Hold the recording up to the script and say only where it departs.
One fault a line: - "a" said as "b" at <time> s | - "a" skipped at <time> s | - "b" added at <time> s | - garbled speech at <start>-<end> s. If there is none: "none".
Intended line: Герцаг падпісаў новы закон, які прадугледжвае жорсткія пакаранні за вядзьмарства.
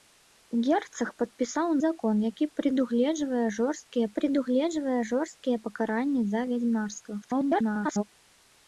- "новы" skipped at 1.7 s
- "прадугледжвае жорсткія" added at 4.2 s
- garbled speech at 7.2-8.0 s